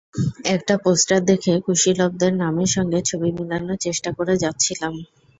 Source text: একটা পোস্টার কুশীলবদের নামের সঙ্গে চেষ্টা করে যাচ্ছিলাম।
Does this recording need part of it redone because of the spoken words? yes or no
yes